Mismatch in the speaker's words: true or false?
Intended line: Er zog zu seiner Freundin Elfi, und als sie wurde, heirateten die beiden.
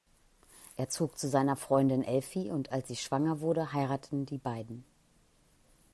true